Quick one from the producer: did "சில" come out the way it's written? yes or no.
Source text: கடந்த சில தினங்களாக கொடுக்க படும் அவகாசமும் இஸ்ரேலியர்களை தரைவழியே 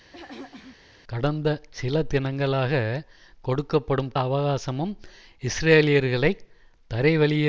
yes